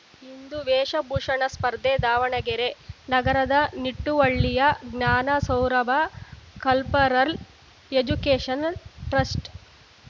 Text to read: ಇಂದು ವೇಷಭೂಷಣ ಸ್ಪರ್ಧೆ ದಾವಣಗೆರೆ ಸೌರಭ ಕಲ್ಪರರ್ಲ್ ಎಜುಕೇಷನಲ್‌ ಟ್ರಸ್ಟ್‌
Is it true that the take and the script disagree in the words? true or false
true